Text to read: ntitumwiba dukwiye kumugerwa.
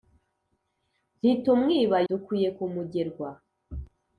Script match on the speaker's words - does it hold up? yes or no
yes